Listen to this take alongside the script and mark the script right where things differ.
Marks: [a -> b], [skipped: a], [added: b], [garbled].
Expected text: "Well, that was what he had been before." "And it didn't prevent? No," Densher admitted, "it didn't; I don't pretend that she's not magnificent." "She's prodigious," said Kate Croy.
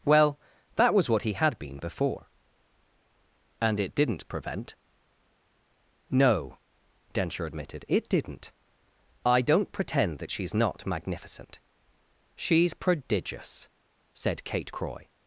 "Well, that was what he had been before." "And it didn't prevent? No," Densher admitted, "it didn't; I don't pretend that she's not magnificent." "She's prodigious," said Kate Croy.